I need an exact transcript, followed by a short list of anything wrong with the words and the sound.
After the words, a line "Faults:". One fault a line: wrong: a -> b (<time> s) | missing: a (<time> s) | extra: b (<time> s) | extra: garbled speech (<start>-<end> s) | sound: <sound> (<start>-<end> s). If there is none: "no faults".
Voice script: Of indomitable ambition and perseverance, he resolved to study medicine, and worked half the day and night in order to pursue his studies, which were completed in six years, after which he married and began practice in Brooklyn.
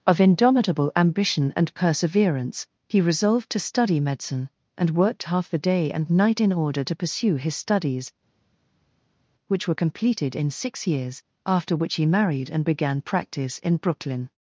Of indomitable ambition and perseverance, he resolved to study medicine, and worked half the day and night in order to pursue his studies, which were completed in six years, after which he married and began practice in Brooklyn.
Faults:
no faults